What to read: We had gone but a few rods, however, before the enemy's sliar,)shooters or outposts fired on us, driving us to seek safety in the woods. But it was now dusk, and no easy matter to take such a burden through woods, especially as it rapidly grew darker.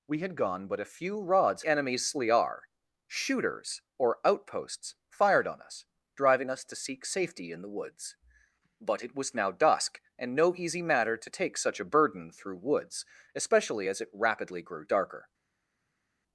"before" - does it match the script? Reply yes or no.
no